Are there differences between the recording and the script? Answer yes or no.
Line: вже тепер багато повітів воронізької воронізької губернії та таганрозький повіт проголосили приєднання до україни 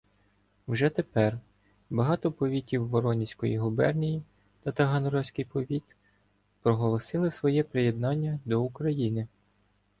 yes